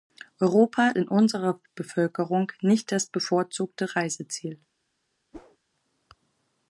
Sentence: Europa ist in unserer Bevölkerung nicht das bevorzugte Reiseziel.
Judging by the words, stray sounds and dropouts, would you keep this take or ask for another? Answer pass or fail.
fail